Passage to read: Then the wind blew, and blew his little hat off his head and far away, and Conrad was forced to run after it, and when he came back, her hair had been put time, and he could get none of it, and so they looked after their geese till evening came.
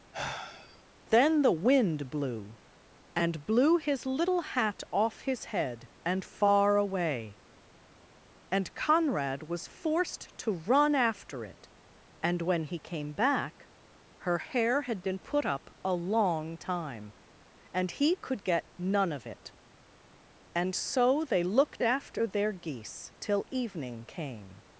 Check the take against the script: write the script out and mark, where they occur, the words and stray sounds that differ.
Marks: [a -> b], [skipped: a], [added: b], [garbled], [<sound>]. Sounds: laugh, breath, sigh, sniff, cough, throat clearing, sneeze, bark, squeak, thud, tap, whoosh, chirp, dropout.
[sigh] Then the wind blew, and blew his little hat off his head and far away, and Conrad was forced to run after it, and when he came back, her hair had been put [added: up a long] time, and he could get none of it, and so they looked after their geese till evening came.